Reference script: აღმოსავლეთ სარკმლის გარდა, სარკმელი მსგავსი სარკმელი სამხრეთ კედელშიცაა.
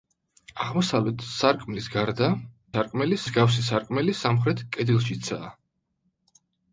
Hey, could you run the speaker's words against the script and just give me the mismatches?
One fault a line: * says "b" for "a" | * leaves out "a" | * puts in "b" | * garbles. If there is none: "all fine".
all fine